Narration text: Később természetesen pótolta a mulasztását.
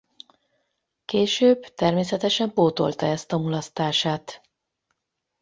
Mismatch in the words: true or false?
true